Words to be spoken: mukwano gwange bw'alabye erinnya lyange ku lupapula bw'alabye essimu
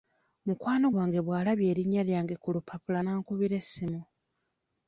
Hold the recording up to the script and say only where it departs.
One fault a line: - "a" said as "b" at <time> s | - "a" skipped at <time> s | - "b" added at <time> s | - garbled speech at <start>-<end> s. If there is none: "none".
- "bw'alabye" said as "n'ankubira" at 3.0 s